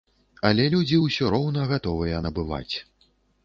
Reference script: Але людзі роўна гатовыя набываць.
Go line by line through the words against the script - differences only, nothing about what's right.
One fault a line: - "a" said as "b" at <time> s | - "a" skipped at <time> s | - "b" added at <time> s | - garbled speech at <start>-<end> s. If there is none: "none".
- "ўсё" added at 1.0 s